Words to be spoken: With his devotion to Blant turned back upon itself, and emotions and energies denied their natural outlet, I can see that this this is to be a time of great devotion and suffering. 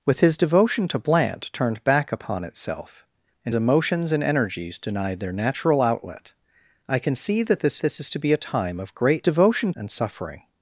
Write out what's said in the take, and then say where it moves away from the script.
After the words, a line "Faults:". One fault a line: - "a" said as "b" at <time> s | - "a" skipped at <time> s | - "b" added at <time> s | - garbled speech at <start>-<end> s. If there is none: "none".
With his devotion to Blant turned back upon itself, and emotions and energies denied their natural outlet, I can see that this this is to be a time of great devotion and suffering.
Faults:
none